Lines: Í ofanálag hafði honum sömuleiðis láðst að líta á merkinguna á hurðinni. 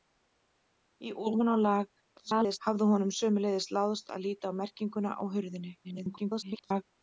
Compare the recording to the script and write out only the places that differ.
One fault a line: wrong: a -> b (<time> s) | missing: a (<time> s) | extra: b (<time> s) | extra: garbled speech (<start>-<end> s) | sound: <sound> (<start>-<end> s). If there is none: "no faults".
extra: garbled speech (2.2-2.6 s)
extra: garbled speech (5.8-6.8 s)